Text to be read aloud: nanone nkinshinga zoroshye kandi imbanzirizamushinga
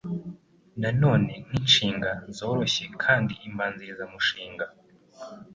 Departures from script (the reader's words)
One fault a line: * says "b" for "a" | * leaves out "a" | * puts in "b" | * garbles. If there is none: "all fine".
all fine